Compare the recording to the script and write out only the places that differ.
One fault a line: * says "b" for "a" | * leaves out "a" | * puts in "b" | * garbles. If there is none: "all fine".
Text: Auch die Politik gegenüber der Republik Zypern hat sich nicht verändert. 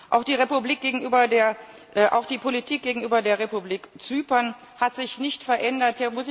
all fine